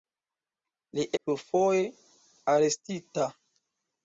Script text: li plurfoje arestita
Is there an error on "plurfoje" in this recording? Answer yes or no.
no